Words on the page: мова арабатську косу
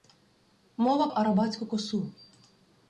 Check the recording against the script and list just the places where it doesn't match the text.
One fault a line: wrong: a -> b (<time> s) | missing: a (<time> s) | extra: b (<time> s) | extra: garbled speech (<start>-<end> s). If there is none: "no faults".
no faults